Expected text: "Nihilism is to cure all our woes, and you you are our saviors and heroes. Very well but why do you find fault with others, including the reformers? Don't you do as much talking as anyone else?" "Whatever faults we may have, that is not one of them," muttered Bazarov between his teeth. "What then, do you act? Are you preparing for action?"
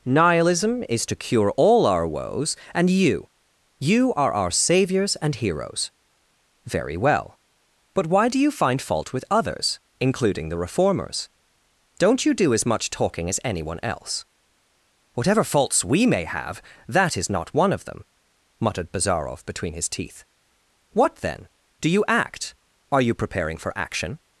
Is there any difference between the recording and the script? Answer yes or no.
no